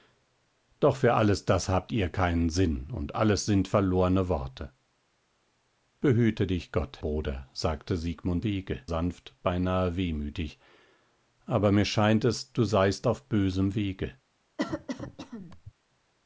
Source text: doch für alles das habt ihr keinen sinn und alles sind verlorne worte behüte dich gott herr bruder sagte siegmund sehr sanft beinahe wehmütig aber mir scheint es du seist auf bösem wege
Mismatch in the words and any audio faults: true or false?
true